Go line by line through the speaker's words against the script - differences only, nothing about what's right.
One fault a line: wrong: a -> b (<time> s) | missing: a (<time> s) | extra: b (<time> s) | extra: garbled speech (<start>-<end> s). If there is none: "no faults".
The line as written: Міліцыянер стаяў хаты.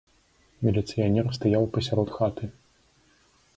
extra: пасярод (1.7 s)